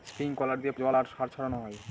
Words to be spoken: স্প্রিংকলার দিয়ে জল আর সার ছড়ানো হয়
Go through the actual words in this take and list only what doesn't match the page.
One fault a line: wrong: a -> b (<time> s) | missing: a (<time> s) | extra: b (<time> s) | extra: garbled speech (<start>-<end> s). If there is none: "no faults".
no faults